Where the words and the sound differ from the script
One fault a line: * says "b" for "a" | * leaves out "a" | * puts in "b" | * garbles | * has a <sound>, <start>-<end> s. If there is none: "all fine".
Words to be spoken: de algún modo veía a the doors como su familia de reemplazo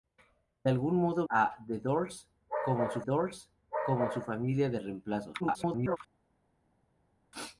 * leaves out "veía"
* puts in "doors como su"
* garbles